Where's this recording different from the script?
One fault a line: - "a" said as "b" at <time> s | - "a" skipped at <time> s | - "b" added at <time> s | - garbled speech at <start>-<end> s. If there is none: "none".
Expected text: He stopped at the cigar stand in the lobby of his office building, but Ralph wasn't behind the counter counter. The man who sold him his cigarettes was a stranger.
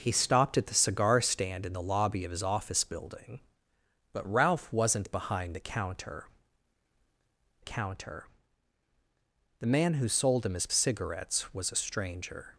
none